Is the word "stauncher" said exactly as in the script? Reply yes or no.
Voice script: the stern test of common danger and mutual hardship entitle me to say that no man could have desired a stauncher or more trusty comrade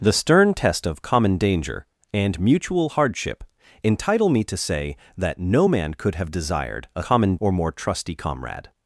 no